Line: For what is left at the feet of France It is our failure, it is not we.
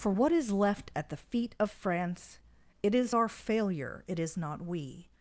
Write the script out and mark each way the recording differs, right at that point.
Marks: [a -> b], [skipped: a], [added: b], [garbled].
For what is left at the feet of France It is our failure, it is not we.